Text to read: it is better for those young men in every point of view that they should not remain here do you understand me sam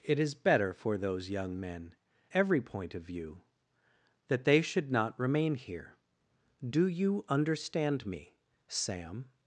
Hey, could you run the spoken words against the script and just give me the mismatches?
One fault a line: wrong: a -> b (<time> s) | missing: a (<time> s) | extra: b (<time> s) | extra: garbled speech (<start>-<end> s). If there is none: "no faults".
missing: in (1.9 s)